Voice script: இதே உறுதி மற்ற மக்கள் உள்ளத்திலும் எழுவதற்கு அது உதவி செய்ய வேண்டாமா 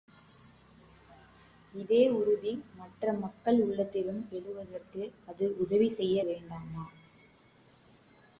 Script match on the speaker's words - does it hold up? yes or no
yes